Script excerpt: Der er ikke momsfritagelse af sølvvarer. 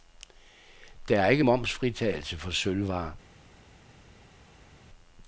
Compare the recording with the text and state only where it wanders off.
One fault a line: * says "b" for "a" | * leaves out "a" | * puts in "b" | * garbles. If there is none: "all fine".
* says "for" for "af"